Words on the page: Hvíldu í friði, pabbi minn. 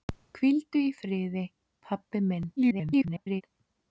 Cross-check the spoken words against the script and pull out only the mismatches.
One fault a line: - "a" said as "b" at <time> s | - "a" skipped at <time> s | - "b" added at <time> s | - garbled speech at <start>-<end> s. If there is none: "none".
- garbled speech at 2.6-3.4 s